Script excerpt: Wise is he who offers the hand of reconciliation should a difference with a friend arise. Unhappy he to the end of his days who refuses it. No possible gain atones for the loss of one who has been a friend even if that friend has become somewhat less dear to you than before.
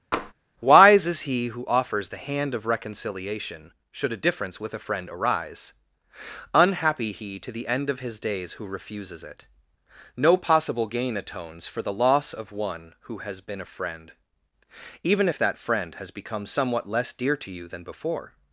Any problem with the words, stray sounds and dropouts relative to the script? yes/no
yes